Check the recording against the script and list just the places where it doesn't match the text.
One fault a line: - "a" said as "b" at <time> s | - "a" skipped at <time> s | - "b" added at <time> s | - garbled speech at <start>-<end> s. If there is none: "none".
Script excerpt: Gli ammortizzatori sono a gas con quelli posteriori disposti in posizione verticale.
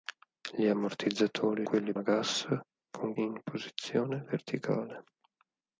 - "sono" said as "quelli" at 1.6 s
- "quelli posteriori disposti" skipped at 3.1 s